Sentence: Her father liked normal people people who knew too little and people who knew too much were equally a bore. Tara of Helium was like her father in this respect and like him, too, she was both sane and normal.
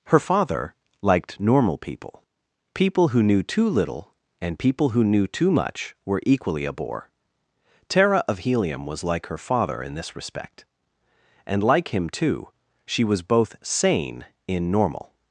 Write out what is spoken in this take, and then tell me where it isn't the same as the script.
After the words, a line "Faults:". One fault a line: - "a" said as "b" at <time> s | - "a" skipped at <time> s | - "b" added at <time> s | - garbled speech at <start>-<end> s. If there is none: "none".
Her father liked normal people people who knew too little and people who knew too much were equally a bore. Tara of Helium was like her father in this respect and like him, too, she was both sane in normal.
Faults:
- "and" said as "in" at 14.5 s